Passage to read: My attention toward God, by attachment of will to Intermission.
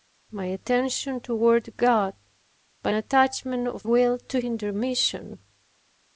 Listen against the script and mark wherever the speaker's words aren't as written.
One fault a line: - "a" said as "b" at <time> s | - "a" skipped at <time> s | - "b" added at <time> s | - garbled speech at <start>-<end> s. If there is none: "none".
none